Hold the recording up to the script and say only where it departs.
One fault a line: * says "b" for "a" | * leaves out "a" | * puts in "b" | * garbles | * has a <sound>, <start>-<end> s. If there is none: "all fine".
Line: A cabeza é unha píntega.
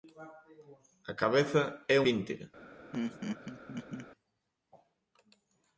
* leaves out "unha"
* has a laugh, 2.9-4.1 s